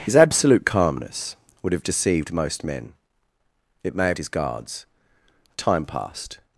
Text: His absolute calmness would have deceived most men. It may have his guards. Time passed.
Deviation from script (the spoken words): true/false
false